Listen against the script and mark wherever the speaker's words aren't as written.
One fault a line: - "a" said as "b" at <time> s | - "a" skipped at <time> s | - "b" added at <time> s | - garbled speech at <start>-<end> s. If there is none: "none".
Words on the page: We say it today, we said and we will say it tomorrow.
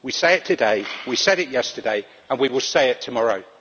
- "it yesterday" added at 1.4 s